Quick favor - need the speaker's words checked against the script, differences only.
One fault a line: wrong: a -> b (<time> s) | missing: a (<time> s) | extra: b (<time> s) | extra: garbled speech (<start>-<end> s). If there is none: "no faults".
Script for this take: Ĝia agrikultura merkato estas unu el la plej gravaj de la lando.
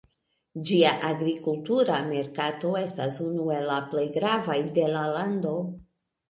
no faults